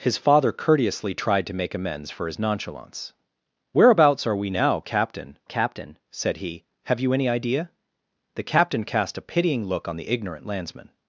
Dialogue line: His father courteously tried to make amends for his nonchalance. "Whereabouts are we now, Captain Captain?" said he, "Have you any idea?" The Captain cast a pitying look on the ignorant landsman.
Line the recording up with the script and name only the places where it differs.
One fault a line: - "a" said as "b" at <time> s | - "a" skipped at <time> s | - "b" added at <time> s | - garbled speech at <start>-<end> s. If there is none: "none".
none